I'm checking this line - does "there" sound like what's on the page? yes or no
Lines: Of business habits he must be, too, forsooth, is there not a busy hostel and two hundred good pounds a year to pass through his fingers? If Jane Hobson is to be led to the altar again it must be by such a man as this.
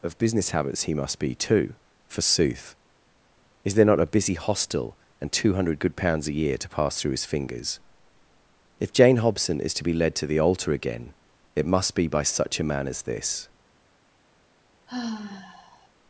yes